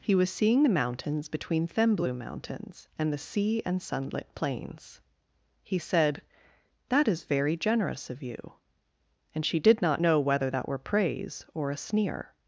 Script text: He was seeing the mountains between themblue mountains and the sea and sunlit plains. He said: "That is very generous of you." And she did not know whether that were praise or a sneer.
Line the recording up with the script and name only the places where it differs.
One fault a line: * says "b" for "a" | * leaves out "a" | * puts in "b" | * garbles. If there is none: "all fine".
all fine